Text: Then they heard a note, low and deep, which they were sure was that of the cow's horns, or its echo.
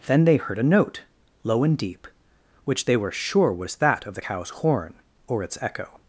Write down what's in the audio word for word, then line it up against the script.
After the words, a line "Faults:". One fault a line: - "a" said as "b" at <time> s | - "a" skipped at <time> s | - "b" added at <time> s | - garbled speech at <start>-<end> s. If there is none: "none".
Then they heard a note, low and deep, which they were sure was that of the cow's horn, or its echo.
Faults:
- "horns" said as "horn" at 4.5 s